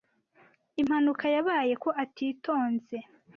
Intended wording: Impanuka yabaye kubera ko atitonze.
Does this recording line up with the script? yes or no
no